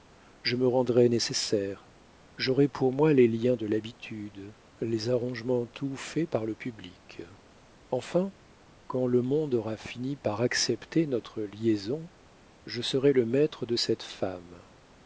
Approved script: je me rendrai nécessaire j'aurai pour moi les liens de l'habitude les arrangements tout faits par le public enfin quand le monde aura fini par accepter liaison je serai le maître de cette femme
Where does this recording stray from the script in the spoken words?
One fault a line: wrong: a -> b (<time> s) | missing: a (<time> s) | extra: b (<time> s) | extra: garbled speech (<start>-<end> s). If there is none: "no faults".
extra: notre (11.1 s)